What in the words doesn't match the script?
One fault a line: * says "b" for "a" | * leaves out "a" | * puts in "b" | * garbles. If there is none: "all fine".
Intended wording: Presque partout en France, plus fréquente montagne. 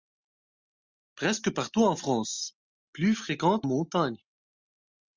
all fine